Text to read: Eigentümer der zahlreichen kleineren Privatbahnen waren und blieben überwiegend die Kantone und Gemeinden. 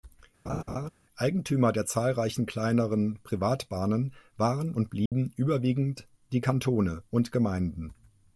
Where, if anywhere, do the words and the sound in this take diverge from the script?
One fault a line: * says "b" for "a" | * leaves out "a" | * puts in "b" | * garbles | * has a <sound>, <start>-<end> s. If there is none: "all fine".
* has a laugh, 0.5-0.9 s
* has a dropout, 5.1-5.1 s